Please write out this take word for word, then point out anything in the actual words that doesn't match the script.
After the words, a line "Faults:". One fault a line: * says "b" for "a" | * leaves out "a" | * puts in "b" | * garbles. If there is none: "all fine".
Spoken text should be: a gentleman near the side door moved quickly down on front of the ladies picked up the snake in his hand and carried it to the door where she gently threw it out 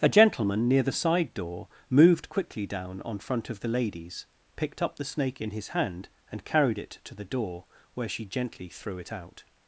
a gentleman near the side door moved quickly down on front of the ladies picked up the snake in his hand and carried it to the door where she gently threw it out
Faults:
all fine